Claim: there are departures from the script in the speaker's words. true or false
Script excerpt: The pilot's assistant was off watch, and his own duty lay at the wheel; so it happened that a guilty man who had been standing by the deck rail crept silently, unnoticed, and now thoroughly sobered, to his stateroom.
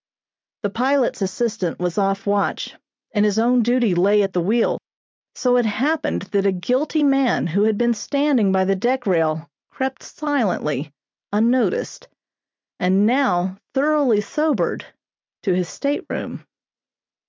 false